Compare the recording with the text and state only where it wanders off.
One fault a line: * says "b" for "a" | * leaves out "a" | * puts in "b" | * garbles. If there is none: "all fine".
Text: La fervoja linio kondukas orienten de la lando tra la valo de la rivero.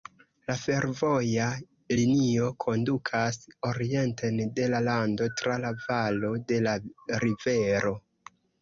all fine